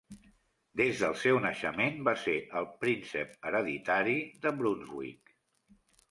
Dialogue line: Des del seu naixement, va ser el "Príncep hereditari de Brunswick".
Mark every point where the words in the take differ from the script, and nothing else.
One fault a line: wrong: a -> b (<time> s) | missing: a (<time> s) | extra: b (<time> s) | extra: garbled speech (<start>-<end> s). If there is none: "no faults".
no faults